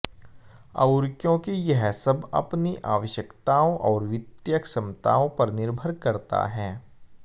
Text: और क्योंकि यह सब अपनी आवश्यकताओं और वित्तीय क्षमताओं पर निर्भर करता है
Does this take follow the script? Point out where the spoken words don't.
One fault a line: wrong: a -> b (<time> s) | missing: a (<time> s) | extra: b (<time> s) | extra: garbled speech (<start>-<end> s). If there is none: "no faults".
no faults